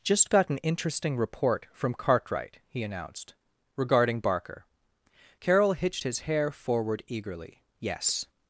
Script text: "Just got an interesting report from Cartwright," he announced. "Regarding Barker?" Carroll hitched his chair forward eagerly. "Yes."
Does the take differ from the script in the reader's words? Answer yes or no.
yes